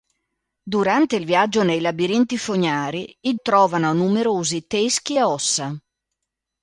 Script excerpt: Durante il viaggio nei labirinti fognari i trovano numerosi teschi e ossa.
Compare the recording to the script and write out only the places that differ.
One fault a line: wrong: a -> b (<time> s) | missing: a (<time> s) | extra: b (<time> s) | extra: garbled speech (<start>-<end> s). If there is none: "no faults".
no faults